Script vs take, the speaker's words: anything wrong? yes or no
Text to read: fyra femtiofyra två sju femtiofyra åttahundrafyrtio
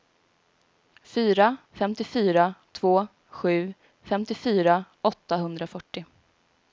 no